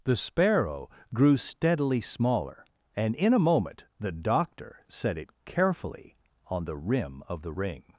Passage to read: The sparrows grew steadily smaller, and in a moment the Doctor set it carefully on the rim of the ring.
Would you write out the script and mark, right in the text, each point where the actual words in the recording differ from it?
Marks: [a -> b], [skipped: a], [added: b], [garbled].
The [sparrows -> sparrow] grew steadily smaller, and in a moment the Doctor set it carefully on the rim of the ring.